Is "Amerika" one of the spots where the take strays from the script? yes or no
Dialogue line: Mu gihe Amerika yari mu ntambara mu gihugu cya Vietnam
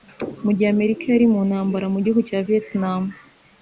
no